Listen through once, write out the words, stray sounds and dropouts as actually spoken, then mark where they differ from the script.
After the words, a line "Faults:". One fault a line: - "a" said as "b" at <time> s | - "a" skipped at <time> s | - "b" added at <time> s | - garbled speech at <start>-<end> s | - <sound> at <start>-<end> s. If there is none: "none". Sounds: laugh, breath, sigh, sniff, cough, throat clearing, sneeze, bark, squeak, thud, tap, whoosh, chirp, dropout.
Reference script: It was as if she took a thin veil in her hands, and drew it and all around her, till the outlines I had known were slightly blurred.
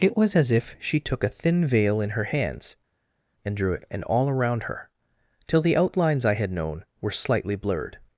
It was as if she took a thin veil in her hands, and drew it and all around her, till the outlines I had known were slightly blurred.
Faults:
none